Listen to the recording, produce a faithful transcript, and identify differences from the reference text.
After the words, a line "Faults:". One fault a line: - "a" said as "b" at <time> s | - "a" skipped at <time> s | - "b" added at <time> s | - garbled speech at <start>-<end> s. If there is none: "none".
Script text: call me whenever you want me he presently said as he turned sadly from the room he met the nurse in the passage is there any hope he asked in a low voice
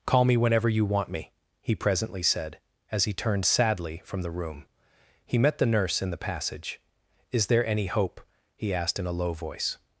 call me whenever you want me he presently said as he turned sadly from the room he met the nurse in the passage is there any hope he asked in a low voice
Faults:
none